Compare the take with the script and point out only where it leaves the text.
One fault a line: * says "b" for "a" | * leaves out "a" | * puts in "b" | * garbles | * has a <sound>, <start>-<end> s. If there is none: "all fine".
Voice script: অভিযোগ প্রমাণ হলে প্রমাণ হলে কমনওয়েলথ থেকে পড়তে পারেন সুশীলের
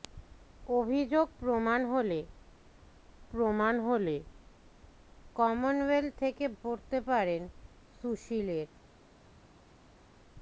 all fine